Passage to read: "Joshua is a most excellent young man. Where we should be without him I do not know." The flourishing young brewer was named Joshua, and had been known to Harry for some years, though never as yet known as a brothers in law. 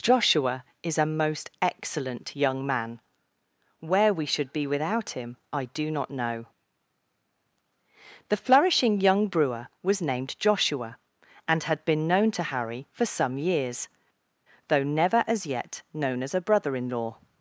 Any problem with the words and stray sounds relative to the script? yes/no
yes